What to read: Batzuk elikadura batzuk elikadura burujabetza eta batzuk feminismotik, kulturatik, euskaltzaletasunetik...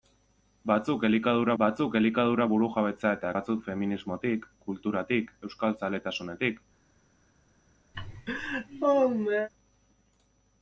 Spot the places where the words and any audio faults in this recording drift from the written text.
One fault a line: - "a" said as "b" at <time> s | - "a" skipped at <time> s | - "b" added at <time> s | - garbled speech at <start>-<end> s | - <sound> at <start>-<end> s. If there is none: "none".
- laugh at 7.9-9.5 s